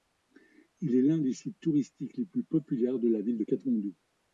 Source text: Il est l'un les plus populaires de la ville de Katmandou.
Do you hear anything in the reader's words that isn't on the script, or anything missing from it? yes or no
yes